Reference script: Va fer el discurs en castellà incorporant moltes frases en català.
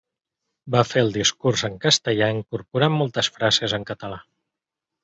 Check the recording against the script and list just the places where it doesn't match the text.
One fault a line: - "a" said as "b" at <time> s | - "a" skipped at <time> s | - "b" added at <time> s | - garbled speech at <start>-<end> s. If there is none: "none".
none